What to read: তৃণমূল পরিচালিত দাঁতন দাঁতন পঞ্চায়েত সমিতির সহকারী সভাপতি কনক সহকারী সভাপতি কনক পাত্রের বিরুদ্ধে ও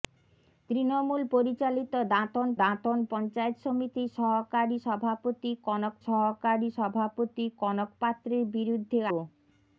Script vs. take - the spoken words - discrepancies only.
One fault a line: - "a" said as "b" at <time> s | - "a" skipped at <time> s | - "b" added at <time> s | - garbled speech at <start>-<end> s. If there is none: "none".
none